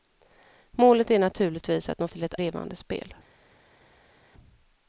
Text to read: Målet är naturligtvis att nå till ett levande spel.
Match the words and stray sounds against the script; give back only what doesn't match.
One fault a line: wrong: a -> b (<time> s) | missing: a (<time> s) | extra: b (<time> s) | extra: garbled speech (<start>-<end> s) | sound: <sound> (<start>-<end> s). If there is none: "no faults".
no faults